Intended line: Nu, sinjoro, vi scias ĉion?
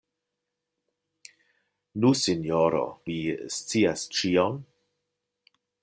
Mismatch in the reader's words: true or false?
false